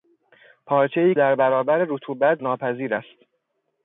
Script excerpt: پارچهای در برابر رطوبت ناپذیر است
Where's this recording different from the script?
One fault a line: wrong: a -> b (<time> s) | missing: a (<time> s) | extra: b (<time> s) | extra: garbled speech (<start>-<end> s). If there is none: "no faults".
no faults